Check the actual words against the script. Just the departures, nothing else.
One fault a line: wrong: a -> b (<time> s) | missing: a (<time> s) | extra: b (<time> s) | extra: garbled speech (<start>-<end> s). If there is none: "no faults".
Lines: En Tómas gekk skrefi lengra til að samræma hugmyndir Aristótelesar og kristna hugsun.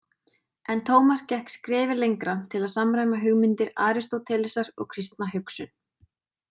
no faults